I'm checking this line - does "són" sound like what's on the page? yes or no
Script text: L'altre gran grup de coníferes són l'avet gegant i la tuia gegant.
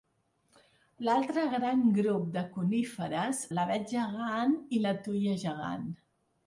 no